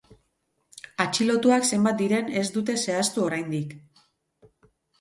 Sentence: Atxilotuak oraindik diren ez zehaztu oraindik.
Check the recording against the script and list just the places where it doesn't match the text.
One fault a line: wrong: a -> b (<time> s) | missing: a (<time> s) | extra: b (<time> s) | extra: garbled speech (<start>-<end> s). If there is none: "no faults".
wrong: oraindik -> zenbat (1.8 s)
extra: dute (2.6 s)